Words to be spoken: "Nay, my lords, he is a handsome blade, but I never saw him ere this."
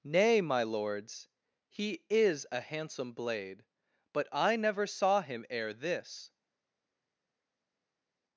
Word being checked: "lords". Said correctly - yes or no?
yes